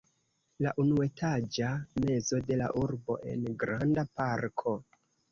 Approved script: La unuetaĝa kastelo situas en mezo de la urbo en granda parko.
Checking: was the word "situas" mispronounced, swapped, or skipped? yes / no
yes